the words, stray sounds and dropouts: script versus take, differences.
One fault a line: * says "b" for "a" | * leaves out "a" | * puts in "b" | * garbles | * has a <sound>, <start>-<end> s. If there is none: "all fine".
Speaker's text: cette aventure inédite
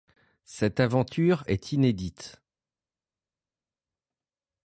* puts in "est"